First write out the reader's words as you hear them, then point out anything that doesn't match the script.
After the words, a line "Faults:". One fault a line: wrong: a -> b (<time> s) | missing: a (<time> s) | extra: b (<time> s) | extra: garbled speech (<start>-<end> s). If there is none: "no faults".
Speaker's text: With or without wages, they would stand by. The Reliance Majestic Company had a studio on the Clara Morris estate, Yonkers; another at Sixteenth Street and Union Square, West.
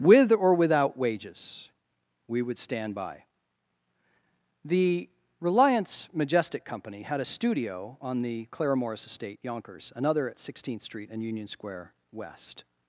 With or without wages, we would stand by. The Reliance Majestic Company had a studio on the Clara Morris estate, Yonkers; another at Sixteenth Street and Union Square, West.
Faults:
wrong: they -> we (2.3 s)